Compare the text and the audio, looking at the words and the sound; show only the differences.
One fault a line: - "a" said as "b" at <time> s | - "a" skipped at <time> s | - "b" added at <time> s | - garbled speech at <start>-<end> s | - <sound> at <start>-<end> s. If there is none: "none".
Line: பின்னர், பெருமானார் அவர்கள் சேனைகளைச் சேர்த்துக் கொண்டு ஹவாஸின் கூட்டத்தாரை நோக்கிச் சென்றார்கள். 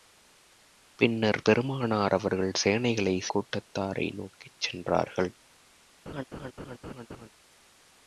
- "சேர்த்துக் கொண்டு ஹவாஸின்" skipped at 3.3 s
- laugh at 6.1-7.3 s